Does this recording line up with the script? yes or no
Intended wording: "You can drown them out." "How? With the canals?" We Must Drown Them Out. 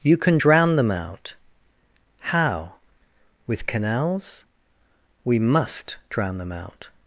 no